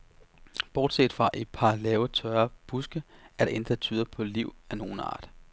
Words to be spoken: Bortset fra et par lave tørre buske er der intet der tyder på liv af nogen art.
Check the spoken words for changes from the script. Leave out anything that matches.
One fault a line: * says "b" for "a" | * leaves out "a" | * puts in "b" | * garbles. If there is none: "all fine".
all fine